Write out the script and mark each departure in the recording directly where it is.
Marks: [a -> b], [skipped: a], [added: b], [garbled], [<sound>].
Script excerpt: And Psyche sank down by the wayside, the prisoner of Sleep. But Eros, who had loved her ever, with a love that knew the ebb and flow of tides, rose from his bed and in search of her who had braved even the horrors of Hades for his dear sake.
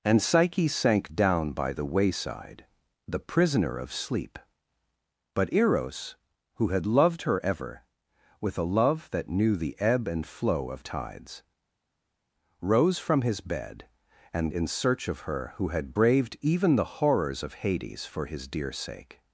And Psyche sank down by the wayside, the prisoner of Sleep. But Eros, who had loved her ever, with a love that knew the ebb and flow of tides, rose from his bed and in search of her who had braved even the horrors of Hades for his dear sake.